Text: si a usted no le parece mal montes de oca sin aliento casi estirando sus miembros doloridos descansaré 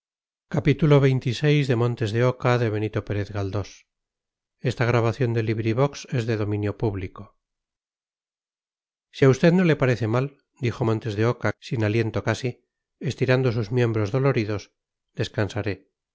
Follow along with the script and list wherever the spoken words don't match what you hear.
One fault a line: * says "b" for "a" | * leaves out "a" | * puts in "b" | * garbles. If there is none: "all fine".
* puts in "dijo"